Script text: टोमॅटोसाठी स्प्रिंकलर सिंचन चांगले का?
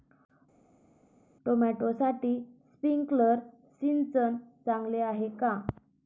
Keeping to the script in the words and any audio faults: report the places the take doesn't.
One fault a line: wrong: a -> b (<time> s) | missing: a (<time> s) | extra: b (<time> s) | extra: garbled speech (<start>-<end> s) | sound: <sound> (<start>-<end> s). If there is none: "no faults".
extra: आहे (5.0 s)